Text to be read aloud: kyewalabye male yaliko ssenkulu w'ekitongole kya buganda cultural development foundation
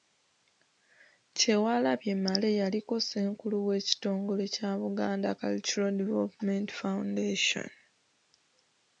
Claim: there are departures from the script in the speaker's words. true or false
false